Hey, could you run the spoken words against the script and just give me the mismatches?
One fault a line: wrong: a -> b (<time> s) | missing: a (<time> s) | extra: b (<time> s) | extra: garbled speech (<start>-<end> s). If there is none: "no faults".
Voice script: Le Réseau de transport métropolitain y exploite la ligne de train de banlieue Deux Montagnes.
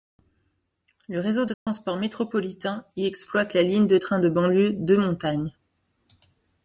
no faults